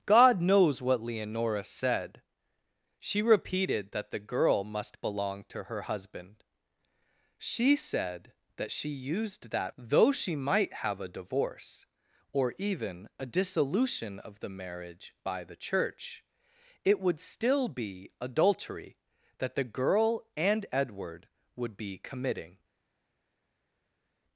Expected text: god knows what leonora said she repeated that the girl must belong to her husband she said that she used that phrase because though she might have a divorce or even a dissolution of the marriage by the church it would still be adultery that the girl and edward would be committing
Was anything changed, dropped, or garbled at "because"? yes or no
yes